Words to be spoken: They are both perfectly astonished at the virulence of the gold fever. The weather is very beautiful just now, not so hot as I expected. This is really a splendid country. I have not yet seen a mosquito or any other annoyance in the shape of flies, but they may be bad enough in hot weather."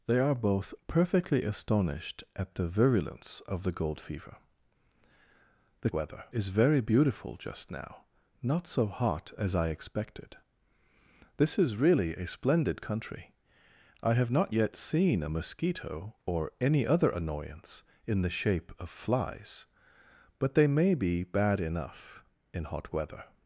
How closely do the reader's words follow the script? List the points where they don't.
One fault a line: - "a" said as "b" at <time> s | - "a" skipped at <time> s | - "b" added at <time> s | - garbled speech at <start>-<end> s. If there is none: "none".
none